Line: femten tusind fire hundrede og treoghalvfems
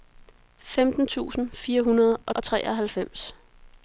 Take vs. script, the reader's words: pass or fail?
fail